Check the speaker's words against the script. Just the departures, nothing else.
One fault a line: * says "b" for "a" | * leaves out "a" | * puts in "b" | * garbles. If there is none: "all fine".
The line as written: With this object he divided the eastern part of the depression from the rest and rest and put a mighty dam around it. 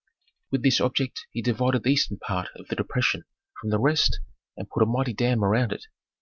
* leaves out "rest and"